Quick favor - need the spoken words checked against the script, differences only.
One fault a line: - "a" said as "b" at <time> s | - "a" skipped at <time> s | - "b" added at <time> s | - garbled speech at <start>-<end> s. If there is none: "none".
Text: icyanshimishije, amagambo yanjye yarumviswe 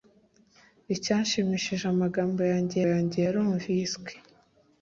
- "yanjye" added at 2.9 s